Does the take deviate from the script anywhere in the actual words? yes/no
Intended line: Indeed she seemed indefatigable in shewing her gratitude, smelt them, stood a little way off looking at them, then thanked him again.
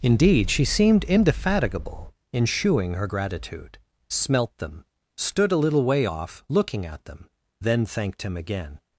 no